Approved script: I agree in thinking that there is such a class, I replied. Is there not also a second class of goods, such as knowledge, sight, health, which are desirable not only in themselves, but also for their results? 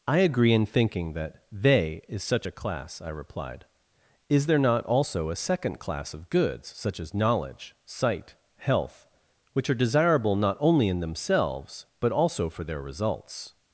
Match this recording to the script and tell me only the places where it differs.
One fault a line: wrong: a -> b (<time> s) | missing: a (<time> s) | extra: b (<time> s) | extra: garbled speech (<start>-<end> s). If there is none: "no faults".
wrong: there -> they (1.5 s)